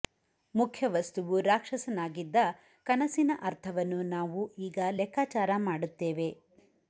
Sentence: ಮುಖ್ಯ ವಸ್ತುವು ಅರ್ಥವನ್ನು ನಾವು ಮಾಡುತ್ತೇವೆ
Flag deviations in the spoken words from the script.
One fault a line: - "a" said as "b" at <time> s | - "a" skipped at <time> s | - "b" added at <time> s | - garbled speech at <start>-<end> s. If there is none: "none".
- "ರಾಕ್ಷಸನಾಗಿದ್ದ ಕನಸಿನ" added at 1.5 s
- "ಈಗ ಲೆಕ್ಕಾಚಾರ" added at 4.7 s